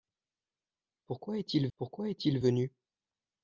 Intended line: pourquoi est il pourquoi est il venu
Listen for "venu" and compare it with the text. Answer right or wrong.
right